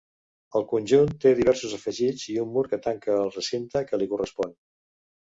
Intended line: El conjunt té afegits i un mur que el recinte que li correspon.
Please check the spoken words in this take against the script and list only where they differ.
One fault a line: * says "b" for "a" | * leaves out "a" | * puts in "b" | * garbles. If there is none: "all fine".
* puts in "diversos"
* puts in "tanca"